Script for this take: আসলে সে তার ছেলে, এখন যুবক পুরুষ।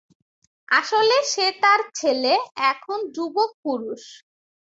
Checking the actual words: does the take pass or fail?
pass